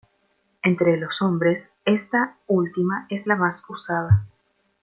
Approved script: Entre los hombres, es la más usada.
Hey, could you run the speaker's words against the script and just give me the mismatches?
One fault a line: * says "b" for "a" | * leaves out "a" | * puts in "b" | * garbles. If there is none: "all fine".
* puts in "esta última"